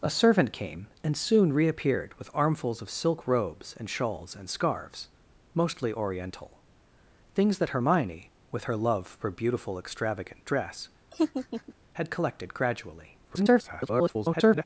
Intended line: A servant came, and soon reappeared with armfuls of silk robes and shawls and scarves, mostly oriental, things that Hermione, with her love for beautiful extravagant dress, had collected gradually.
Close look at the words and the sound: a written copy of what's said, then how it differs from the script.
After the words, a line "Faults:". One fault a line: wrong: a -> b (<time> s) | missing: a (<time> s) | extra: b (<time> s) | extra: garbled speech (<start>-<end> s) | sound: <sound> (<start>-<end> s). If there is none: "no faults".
A servant came, and soon reappeared with armfuls of silk robes and shawls and scarves, mostly oriental, things that Hermione, with her love for beautiful extravagant dress, had collected gradually. [garbled]
Faults:
sound: laugh (11.1-11.7 s)
extra: garbled speech (13.2-14.6 s)